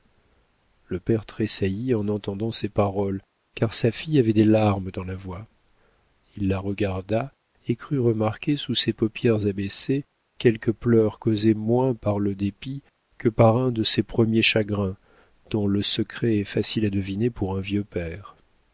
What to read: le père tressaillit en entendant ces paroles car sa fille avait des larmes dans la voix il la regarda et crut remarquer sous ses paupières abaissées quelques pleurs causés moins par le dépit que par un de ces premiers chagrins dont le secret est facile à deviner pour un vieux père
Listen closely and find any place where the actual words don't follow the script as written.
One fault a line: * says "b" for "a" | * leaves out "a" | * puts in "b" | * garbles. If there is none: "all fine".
all fine